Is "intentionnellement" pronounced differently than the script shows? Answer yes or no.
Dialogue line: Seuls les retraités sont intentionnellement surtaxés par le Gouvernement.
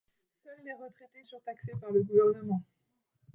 yes